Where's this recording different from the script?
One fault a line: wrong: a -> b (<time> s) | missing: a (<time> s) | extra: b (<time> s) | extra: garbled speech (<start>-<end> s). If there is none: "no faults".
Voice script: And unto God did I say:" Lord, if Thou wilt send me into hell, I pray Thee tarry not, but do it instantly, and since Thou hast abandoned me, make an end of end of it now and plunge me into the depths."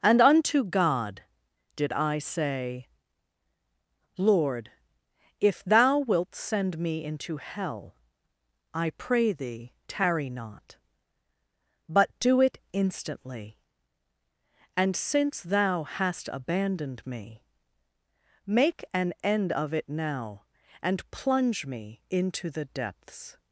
missing: end of (19.7 s)